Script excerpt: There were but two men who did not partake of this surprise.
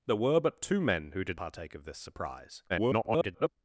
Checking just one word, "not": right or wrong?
wrong